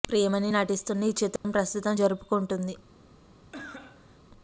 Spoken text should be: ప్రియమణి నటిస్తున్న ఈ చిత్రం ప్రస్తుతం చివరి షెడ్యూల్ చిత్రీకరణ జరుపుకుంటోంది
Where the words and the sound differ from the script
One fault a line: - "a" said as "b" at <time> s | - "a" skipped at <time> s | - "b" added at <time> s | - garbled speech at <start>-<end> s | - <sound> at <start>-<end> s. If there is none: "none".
- dropout at 1.4-1.4 s
- "చివరి షెడ్యూల్ చిత్రీకరణ" skipped at 1.9 s
- cough at 3.5-4.2 s